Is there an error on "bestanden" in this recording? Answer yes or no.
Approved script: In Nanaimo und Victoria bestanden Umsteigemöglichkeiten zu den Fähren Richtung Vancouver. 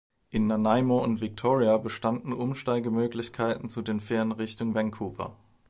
no